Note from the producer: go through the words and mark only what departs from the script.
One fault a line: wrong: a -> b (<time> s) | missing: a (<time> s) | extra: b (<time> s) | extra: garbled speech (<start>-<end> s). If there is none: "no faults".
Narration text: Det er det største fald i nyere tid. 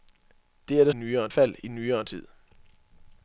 wrong: største -> nyere (0.9 s)